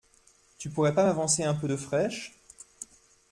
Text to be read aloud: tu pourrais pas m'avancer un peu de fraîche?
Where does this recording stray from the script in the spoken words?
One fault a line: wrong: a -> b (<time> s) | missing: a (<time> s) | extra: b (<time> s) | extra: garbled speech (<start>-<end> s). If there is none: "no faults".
no faults